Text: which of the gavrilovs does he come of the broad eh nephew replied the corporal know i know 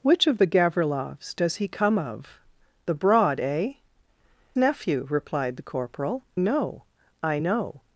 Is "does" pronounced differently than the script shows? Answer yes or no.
no